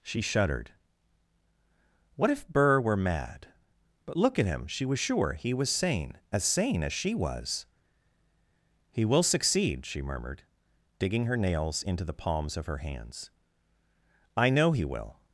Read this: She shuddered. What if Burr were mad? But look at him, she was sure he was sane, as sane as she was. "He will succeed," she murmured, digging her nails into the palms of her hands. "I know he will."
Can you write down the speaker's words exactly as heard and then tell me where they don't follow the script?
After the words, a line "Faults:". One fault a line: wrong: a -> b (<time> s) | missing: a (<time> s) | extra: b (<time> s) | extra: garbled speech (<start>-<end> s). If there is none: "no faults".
She shuddered. What if Burr were mad? But look at him, she was sure he was sane, as sane as she was. "He will succeed," she murmured, digging her nails into the palms of her hands. "I know he will."
Faults:
no faults